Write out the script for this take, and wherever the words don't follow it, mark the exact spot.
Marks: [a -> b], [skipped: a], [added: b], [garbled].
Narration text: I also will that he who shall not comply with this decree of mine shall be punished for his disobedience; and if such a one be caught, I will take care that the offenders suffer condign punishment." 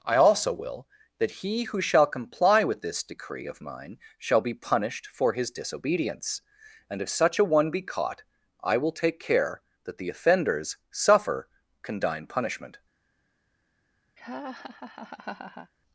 I also will that he who shall [skipped: not] comply with this decree of mine shall be punished for his disobedience; and if such a one be caught, I will take care that the offenders suffer condign punishment."